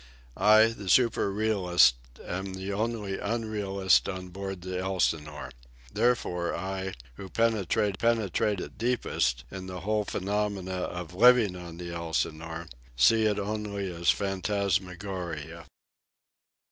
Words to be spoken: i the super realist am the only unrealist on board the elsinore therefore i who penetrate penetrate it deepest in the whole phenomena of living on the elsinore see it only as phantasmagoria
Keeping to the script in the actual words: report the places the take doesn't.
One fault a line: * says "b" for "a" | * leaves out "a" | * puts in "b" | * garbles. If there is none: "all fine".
all fine